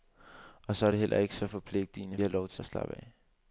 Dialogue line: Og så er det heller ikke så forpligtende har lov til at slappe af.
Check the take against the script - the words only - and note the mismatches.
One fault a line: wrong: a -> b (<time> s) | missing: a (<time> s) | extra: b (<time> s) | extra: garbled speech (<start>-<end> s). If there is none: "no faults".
no faults